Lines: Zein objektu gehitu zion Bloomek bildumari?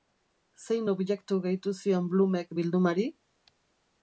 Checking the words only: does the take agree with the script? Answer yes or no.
yes